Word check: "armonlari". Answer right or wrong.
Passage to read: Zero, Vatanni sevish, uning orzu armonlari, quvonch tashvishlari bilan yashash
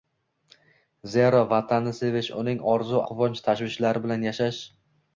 wrong